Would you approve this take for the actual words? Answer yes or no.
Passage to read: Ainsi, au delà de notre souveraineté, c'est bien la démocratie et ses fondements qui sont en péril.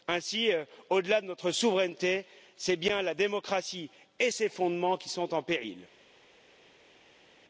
yes